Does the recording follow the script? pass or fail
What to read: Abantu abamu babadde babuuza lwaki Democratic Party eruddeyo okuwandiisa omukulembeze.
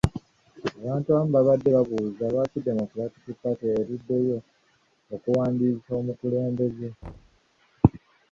pass